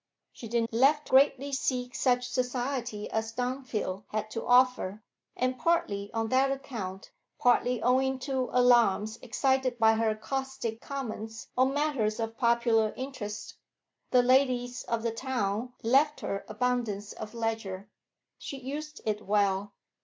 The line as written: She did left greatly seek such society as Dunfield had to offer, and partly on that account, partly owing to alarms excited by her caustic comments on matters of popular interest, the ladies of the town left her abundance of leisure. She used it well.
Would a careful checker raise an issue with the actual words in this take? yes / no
no